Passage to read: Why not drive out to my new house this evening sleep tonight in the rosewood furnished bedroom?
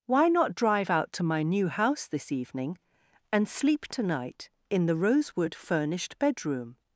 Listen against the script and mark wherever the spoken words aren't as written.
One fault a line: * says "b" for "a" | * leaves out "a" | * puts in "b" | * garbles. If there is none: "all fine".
* puts in "and"